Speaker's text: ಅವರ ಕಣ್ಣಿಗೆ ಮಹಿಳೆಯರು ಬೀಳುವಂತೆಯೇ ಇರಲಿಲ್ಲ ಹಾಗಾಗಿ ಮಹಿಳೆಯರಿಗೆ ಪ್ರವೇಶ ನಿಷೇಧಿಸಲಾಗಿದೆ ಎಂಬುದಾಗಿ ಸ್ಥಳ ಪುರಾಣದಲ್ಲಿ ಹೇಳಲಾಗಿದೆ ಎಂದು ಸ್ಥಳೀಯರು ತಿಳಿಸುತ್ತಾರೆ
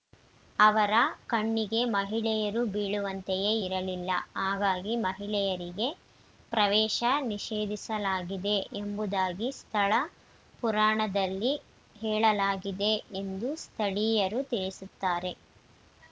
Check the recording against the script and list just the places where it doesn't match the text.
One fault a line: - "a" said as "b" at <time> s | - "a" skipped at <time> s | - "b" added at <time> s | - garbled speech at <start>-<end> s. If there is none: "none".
none